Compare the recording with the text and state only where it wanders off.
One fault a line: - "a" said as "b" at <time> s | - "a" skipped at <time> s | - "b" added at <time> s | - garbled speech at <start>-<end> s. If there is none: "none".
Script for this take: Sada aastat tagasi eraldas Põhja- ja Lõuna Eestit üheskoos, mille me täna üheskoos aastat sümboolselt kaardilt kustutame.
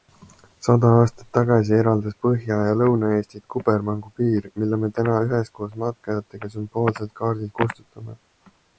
- "üheskoos" said as "kubermangupiir" at 3.5 s
- "aastat" said as "matkajatega" at 5.8 s